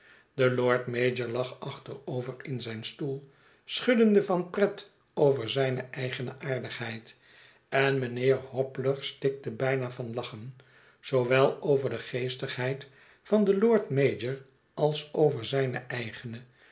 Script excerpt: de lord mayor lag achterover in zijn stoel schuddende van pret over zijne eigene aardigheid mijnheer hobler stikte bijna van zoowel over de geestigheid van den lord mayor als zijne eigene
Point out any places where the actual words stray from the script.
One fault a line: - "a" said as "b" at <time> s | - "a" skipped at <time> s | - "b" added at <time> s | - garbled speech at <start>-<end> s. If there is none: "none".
- "en" added at 7.7 s
- "lachen" added at 10.1 s
- "over" added at 15.1 s